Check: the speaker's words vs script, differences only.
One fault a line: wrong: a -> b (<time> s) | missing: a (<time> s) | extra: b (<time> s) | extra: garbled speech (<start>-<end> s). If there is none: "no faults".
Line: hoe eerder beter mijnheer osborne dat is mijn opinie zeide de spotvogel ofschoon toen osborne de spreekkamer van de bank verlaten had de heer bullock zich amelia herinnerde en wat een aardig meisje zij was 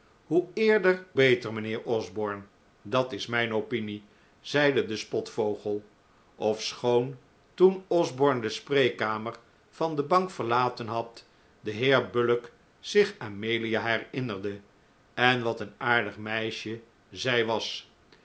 no faults